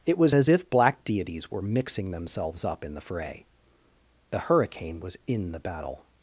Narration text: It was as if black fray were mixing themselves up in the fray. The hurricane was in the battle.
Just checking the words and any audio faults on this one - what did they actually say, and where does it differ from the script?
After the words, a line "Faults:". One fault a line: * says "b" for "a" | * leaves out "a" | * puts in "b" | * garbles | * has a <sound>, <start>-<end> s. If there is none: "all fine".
It was as if black deities were mixing themselves up in the fray. The hurricane was in the battle.
Faults:
* says "deities" for "fray"